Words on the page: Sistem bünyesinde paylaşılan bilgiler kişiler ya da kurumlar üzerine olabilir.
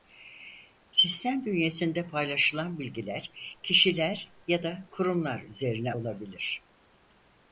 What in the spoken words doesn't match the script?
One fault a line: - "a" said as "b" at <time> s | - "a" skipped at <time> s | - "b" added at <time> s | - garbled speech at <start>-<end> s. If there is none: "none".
none